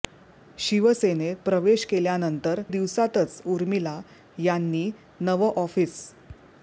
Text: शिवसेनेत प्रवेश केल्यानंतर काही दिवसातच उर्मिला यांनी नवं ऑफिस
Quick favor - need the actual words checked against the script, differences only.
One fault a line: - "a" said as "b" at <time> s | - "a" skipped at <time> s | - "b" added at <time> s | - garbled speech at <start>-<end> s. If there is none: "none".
- "काही" skipped at 2.6 s